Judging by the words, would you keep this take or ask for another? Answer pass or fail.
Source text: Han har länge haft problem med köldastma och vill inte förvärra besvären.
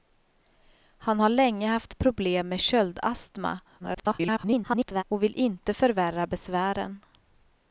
fail